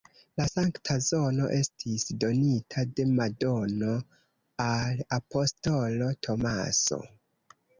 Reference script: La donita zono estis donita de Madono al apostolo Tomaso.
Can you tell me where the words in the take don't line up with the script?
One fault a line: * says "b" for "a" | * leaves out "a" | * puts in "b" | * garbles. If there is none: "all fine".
* says "sankta" for "donita"